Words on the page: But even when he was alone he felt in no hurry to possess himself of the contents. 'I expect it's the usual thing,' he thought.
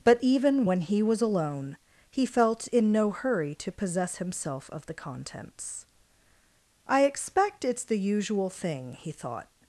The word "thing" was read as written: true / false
true